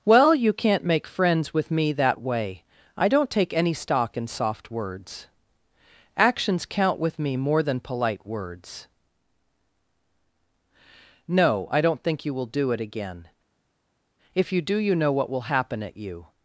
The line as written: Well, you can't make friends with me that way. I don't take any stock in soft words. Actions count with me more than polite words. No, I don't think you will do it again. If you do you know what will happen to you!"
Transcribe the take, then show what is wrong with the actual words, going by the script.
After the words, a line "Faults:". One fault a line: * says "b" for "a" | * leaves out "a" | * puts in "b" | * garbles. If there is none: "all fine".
Well, you can't make friends with me that way. I don't take any stock in soft words. Actions count with me more than polite words. No, I don't think you will do it again. If you do you know what will happen at you!"
Faults:
* says "at" for "to"